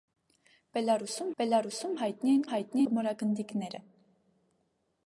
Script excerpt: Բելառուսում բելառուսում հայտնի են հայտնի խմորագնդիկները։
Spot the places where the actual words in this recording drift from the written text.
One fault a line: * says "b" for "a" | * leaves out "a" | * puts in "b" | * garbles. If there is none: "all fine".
all fine